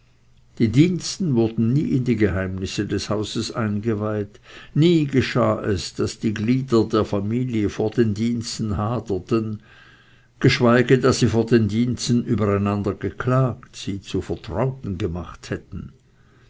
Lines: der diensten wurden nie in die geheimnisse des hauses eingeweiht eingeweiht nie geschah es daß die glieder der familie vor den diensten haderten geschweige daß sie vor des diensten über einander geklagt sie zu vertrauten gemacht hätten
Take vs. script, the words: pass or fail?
fail